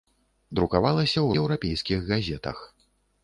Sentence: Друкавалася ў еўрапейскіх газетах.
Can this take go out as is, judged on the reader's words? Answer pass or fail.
pass